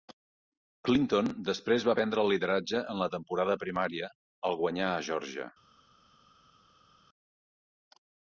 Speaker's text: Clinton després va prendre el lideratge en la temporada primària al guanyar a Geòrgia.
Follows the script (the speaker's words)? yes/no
yes